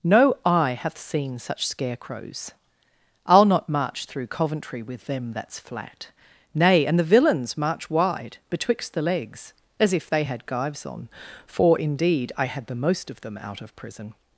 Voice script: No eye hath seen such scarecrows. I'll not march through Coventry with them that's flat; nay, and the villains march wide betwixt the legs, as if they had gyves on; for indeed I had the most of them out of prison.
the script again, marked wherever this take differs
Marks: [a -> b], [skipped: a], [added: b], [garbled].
No eye hath seen such scarecrows. I'll not march through Coventry with them that's flat; nay, and the villains march wide betwixt the legs, as if they had gyves on; for indeed I had the most of them out of prison.